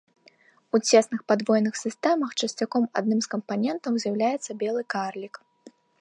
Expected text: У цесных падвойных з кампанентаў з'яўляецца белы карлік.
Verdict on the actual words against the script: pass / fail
fail